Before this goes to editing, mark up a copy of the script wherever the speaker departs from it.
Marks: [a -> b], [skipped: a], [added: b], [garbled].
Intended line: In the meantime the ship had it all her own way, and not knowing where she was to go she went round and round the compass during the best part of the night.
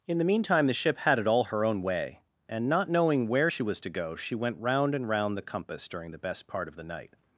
In the meantime the ship had it all her own way, and not knowing where she was to go she went round and round the compass during the best part of the night.